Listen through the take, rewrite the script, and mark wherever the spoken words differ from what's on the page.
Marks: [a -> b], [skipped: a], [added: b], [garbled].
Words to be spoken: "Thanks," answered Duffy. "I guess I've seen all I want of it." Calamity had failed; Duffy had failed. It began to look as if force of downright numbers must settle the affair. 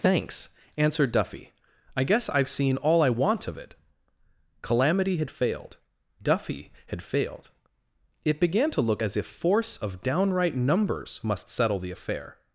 "Thanks," answered Duffy. "I guess I've seen all I want of it." Calamity had failed; Duffy had failed. It began to look as if force of downright numbers must settle the affair.